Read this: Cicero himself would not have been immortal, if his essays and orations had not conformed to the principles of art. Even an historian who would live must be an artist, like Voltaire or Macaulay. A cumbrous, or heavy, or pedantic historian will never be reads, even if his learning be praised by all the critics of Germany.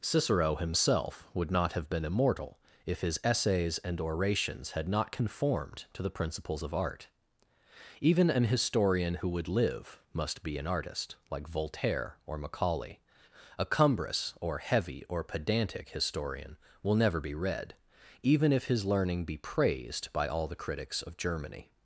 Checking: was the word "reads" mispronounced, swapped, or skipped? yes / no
yes